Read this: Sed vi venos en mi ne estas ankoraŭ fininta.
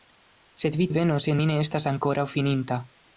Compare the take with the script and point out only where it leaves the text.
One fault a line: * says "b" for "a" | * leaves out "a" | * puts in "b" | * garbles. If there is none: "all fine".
all fine